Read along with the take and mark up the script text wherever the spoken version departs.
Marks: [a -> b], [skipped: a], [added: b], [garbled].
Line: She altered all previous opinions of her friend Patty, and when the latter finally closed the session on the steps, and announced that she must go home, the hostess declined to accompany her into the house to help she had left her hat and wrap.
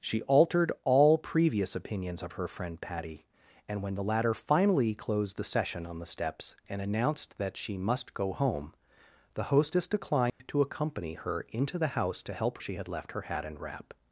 She altered all previous opinions of her friend Patty, and when the latter finally closed the session on the steps, and announced that she must go home, the hostess declined to accompany her into the house to help she had left her hat and wrap.